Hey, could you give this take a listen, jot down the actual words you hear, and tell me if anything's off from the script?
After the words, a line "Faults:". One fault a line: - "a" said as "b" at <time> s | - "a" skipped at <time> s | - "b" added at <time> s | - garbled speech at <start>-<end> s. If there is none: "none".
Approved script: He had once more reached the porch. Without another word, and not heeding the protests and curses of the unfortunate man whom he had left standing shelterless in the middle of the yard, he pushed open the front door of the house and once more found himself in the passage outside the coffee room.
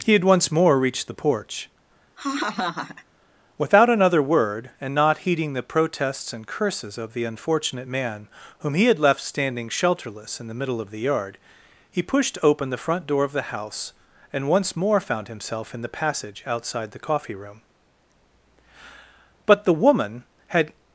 He had once more reached the porch. Without another word, and not heeding the protests and curses of the unfortunate man whom he had left standing shelterless in the middle of the yard, he pushed open the front door of the house and once more found himself in the passage outside the coffee room. But the woman had
Faults:
- "But the woman had" added at 19.5 s